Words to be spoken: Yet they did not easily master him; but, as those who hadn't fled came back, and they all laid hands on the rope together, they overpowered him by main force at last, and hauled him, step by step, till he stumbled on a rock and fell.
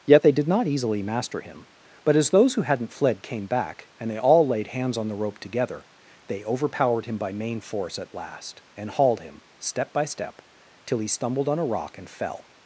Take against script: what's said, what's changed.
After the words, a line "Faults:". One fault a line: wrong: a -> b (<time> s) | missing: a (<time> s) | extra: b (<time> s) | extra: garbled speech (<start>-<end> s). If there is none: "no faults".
Yet they did not easily master him; but, as those who hadn't fled came back, and they all laid hands on the rope together, they overpowered him by main force at last, and hauled him, step by step, till he stumbled on a rock and fell.
Faults:
no faults